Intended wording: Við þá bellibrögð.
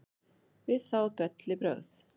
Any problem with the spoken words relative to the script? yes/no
no